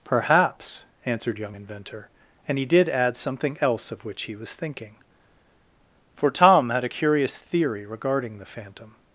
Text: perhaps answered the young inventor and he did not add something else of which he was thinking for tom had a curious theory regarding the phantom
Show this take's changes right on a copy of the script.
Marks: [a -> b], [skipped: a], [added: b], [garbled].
perhaps answered [skipped: the] young inventor and he did [skipped: not] add something else of which he was thinking for tom had a curious theory regarding the phantom